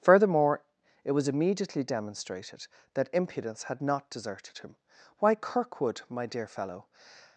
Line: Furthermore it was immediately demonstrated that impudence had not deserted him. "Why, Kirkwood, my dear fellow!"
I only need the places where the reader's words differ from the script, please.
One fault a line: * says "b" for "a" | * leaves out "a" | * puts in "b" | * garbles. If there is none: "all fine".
all fine